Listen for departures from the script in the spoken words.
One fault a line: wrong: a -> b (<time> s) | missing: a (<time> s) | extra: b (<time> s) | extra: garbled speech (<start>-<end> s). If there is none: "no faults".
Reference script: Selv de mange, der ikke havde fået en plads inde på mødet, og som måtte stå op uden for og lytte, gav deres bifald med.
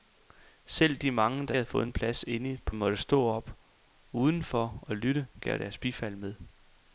missing: ikke (1.6 s)
missing: mødet og som (2.8 s)